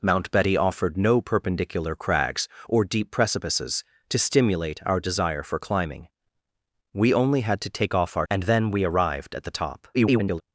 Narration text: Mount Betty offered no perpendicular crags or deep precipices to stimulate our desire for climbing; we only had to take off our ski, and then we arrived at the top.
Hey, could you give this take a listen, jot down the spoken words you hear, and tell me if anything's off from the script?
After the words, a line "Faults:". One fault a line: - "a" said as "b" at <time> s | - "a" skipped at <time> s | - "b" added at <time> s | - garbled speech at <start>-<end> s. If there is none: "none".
Mount Betty offered no perpendicular crags or deep precipices to stimulate our desire for climbing; we only had to take off our and then we arrived at the top. [garbled]
Faults:
- "ski" skipped at 8.3 s
- garbled speech at 9.9-10.4 s